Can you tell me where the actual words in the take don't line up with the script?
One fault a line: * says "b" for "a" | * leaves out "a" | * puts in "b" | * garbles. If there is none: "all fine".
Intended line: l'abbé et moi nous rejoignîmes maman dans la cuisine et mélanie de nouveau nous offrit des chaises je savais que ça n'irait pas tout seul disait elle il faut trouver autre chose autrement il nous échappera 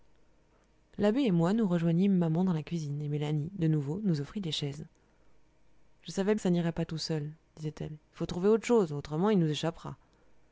all fine